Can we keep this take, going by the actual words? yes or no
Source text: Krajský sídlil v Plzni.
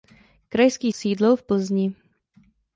yes